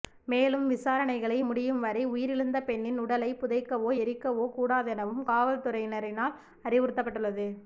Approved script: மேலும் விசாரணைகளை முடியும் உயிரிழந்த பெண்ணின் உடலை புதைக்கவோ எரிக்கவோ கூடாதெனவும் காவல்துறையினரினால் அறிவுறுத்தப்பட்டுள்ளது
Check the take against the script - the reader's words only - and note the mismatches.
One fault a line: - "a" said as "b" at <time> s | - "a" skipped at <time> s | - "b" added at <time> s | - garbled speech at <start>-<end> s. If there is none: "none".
- "வரை" added at 1.8 s